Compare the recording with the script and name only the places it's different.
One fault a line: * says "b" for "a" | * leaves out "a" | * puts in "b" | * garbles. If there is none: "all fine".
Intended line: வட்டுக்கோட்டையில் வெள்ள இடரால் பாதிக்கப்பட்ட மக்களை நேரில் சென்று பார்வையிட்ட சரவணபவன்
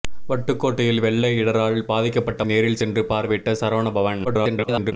* leaves out "மக்களை"
* garbles